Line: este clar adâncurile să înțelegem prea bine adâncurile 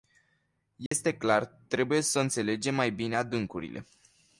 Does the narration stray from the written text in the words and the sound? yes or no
yes